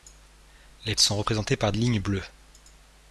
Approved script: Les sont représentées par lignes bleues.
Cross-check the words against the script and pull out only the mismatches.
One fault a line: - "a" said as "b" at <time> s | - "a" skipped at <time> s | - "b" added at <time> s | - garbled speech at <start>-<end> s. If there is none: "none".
none